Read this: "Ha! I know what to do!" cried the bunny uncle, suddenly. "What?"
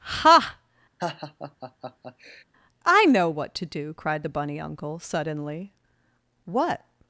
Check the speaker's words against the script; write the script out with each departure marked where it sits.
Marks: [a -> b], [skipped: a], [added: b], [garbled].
"Ha! I know what to do!" cried the bunny uncle, suddenly. "What?"